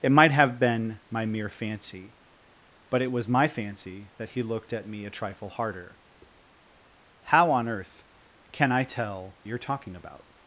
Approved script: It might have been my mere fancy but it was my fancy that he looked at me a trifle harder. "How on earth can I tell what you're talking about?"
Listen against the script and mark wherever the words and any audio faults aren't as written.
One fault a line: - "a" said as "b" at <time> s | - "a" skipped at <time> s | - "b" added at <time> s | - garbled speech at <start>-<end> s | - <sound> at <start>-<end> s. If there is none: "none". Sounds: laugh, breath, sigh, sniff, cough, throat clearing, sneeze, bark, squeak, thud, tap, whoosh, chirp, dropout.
- "what" skipped at 9.4 s